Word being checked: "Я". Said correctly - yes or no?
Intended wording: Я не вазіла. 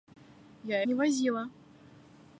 yes